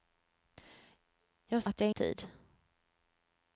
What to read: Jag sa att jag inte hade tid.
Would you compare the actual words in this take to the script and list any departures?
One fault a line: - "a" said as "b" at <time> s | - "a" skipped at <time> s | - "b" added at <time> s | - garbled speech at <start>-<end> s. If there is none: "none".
- "sa" skipped at 1.6 s
- "inte hade" skipped at 1.9 s